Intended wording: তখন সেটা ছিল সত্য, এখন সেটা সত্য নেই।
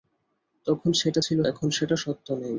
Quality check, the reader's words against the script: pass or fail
fail